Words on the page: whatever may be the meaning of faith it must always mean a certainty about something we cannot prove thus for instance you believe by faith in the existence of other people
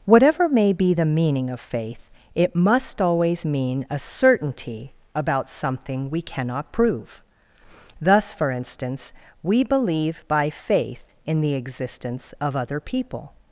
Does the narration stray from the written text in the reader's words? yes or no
yes